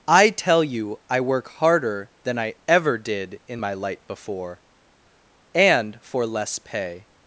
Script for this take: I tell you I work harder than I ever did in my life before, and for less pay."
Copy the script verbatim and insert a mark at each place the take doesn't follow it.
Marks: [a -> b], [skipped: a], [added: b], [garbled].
I tell you I work harder than I ever did in my [life -> light] before, and for less pay."